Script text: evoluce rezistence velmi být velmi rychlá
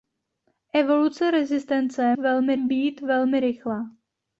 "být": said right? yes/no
yes